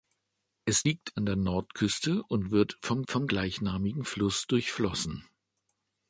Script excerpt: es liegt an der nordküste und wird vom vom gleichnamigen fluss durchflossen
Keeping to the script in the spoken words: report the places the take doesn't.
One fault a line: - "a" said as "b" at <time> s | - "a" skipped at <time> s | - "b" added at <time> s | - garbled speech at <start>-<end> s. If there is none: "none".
none